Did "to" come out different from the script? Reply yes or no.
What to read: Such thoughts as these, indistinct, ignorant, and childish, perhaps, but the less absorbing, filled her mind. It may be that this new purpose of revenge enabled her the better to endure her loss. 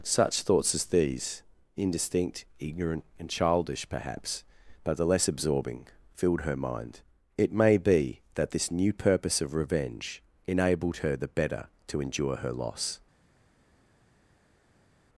no